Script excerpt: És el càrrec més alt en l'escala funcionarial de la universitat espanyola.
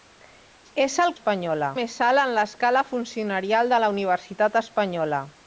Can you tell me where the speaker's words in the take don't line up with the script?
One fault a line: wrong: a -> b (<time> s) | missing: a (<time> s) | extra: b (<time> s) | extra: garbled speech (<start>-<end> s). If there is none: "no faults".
wrong: càrrec -> espanyola (1.2 s)